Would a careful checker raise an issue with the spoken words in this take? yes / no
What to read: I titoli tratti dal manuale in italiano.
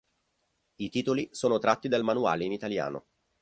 yes